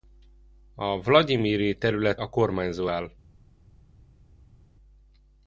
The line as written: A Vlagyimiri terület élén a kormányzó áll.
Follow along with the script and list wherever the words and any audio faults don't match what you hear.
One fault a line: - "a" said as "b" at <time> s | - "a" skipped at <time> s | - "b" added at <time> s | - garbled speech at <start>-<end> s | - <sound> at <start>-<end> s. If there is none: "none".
- "élén" skipped at 2.2 s